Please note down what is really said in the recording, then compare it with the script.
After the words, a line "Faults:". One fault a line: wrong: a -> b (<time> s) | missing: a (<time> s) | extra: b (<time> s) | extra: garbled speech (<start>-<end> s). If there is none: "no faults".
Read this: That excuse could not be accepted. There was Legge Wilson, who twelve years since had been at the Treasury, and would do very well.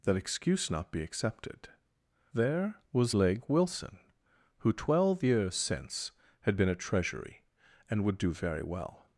That excuse not be accepted. There was Legge Wilson, who twelve years since had been at Treasury, and would do very well.
Faults:
missing: could (0.7 s)
missing: the (6.8 s)